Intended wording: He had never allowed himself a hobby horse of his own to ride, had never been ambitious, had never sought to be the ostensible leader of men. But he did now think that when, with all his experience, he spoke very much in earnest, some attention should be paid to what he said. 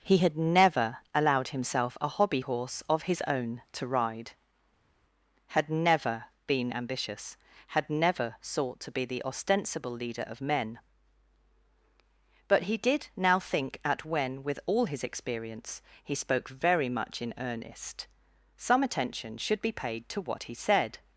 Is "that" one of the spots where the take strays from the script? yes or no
yes